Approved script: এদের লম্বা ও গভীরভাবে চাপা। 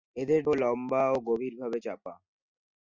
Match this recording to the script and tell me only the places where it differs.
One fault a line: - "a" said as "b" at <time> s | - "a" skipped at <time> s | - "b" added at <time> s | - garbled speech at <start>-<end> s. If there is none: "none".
none